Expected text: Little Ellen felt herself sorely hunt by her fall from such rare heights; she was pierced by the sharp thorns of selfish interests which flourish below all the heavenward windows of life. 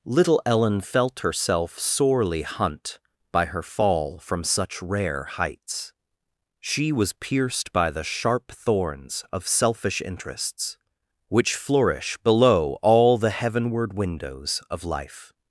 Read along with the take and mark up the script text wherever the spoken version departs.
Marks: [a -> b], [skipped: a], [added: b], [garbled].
Little Ellen felt herself sorely hunt by her fall from such rare heights; she was pierced by the sharp thorns of selfish interests which flourish below all the heavenward windows of life.